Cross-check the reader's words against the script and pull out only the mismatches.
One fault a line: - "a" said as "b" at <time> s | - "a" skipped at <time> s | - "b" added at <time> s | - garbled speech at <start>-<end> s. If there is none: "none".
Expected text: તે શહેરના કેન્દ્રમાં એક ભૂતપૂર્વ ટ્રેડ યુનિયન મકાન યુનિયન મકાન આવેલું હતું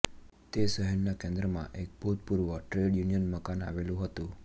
- "યુનિયન મકાન" skipped at 3.7 s